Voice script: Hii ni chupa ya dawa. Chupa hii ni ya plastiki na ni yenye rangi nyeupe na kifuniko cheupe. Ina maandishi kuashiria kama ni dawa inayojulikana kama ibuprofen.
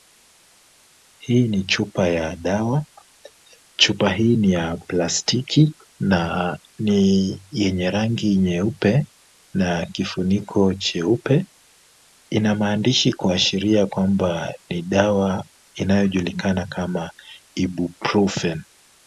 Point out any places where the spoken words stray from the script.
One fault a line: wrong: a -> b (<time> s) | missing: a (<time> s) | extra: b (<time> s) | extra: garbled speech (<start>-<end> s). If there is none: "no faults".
wrong: kama -> kwamba (13.9 s)